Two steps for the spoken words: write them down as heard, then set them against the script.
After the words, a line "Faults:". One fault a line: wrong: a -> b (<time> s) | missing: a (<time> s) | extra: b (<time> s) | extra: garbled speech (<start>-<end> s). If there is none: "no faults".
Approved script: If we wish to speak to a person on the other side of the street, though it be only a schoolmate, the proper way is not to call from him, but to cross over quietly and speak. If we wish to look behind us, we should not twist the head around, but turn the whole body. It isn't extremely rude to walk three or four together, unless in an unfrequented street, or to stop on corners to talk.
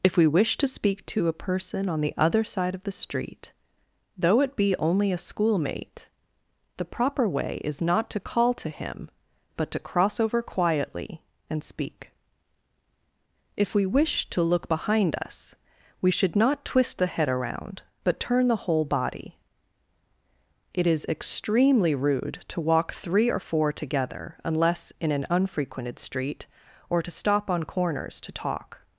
If we wish to speak to a person on the other side of the street, though it be only a schoolmate, the proper way is not to call to him, but to cross over quietly and speak. If we wish to look behind us, we should not twist the head around, but turn the whole body. It is extremely rude to walk three or four together, unless in an unfrequented street, or to stop on corners to talk.
Faults:
wrong: from -> to (8.6 s)
wrong: isn't -> is (20.9 s)